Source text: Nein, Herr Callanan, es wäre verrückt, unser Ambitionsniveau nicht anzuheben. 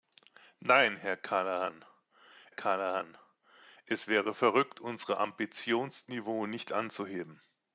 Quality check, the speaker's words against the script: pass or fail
fail